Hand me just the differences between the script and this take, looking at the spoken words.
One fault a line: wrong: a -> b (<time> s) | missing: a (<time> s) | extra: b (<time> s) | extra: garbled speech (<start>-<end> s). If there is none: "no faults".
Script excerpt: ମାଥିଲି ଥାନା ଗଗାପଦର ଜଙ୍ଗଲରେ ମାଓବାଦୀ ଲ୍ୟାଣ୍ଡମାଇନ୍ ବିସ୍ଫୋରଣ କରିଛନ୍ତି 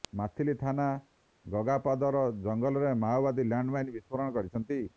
no faults